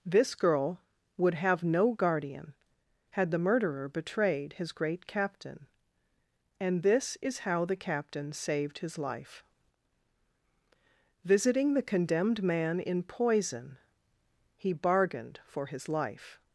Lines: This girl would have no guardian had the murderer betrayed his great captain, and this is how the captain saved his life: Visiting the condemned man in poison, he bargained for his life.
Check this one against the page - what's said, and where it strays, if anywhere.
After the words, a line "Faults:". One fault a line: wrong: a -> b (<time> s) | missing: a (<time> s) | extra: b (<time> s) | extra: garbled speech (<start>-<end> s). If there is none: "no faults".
This girl would have no guardian had the murderer betrayed his great captain, and this is how the captain saved his life: Visiting the condemned man in poison, he bargained for his life.
Faults:
no faults